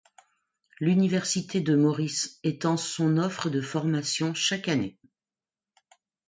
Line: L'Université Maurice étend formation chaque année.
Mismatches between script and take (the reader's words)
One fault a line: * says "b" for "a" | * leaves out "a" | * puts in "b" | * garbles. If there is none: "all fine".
* puts in "de"
* puts in "son offre de"